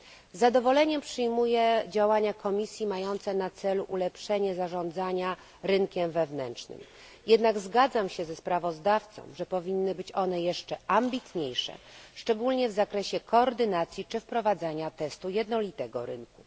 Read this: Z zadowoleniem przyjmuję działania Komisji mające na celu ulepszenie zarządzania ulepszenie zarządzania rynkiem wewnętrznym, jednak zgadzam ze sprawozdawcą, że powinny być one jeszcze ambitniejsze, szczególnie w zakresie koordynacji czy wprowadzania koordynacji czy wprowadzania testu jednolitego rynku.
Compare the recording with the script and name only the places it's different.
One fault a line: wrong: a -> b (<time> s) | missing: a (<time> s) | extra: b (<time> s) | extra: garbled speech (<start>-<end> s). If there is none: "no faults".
missing: ulepszenie zarządzania (5.4 s)
extra: się (8.1 s)
missing: koordynacji czy wprowadzania (14.9 s)